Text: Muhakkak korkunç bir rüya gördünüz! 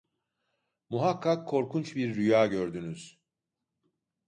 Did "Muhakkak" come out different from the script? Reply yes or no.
no